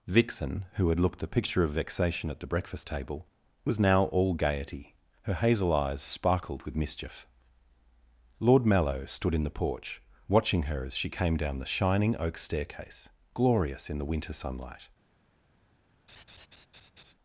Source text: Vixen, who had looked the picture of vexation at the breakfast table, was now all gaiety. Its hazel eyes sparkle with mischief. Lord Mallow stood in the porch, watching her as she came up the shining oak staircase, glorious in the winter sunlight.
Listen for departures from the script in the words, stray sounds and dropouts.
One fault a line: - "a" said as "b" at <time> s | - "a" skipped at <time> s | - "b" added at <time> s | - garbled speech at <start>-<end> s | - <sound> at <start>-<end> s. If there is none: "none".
- "Its" said as "Her" at 5.2 s
- "sparkle" said as "sparkled" at 6.0 s
- "up" said as "down" at 11.4 s
- laugh at 16.1-17.1 s